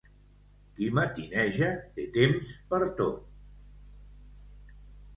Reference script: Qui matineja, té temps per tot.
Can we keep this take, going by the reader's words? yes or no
yes